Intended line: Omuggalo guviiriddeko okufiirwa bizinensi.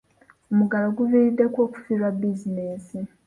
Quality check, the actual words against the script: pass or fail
pass